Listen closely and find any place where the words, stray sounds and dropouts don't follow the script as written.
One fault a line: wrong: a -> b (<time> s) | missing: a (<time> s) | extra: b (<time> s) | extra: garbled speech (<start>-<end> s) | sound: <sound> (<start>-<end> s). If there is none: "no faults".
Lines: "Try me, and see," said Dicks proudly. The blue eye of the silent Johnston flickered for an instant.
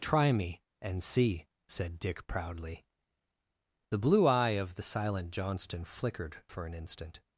wrong: Dicks -> Dick (2.0 s)